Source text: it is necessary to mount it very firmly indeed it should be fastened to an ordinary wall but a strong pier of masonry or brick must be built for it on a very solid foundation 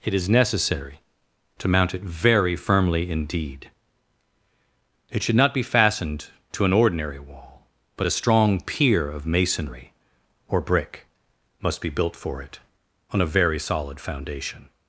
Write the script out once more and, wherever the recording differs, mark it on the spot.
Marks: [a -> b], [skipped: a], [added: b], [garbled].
it is necessary to mount it very firmly indeed it should [added: not] be fastened to an ordinary wall but a strong pier of masonry or brick must be built for it on a very solid foundation